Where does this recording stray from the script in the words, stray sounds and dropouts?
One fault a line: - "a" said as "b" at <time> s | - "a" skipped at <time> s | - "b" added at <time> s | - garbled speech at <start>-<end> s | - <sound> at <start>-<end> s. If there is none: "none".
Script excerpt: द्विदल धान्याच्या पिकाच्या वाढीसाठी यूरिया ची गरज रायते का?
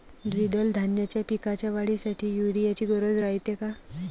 none